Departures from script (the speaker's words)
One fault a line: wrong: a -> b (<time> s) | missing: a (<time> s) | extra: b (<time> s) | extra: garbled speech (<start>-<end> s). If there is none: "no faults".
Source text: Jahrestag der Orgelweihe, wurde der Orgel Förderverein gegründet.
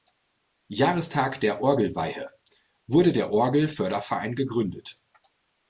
no faults